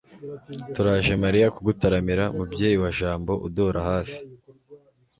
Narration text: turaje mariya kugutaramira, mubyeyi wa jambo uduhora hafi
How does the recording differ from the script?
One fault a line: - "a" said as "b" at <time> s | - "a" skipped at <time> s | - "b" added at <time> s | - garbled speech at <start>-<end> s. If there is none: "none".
none